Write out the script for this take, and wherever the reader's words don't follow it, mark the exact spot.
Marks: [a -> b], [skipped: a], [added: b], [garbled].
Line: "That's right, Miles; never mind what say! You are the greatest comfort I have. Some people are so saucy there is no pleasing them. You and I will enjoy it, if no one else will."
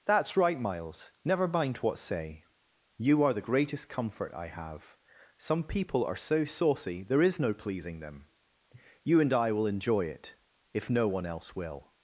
"That's right, Miles; never mind what say! You are the greatest comfort I have. Some people are so saucy there is no pleasing them. You and I will enjoy it, if no one else will."